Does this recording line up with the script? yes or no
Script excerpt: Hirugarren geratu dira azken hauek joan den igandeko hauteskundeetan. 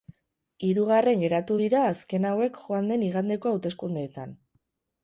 yes